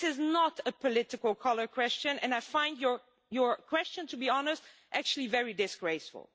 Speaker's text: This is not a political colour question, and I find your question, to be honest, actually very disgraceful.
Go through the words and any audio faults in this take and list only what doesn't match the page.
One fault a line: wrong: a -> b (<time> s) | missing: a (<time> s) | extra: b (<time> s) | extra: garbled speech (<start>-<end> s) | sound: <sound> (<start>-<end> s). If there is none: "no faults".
no faults